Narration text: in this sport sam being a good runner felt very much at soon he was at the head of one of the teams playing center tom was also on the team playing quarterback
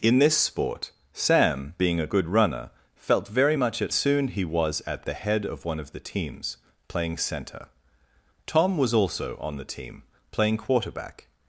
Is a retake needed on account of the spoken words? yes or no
no